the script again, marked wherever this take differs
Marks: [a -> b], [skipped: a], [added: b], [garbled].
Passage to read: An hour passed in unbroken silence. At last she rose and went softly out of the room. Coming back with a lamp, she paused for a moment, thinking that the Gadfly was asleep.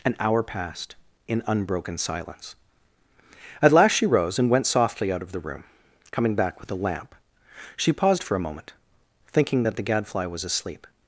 An hour passed in unbroken silence. At last she rose and went softly out of the room. Coming back with a lamp, she paused for a moment, thinking that the Gadfly was asleep.